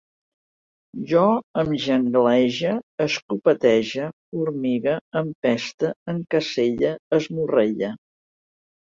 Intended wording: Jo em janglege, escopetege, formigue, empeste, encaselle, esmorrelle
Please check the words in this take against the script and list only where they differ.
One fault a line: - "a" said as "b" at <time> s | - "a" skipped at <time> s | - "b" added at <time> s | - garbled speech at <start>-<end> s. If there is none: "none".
none